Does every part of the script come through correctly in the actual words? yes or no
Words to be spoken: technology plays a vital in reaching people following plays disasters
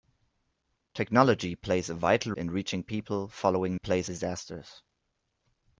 yes